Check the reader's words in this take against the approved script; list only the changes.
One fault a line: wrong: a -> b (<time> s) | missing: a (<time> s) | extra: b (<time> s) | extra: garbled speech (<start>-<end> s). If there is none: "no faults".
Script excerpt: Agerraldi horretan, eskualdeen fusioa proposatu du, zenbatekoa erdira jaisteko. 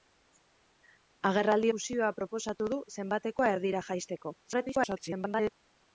missing: horretan eskualdeen (1.7 s)
extra: garbled speech (4.4-5.5 s)